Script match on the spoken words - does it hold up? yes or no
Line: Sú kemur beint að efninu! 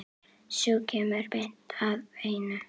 yes